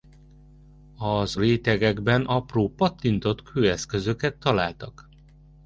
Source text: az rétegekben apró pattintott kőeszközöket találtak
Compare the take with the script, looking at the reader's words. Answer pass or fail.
pass